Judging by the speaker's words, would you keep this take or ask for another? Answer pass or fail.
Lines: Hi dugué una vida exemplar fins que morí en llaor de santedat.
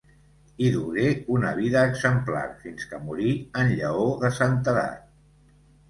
pass